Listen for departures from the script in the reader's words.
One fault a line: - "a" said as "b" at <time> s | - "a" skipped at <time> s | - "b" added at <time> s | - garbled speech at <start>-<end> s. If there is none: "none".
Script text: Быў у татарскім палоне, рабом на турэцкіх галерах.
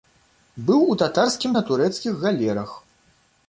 - "палоне рабом" skipped at 1.5 s